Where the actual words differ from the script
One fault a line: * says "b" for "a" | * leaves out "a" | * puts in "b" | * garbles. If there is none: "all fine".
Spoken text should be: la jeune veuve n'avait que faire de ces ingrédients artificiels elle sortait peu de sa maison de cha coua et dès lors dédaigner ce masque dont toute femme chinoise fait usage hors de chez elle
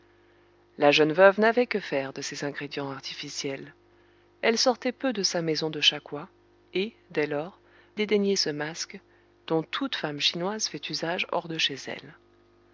all fine